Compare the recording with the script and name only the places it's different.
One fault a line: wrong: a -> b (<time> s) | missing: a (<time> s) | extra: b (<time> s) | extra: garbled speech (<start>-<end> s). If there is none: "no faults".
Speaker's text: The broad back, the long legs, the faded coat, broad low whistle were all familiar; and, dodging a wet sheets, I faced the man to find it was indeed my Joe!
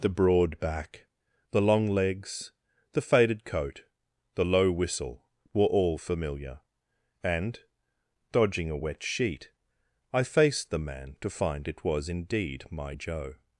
wrong: broad -> the (4.3 s)
wrong: sheets -> sheet (9.0 s)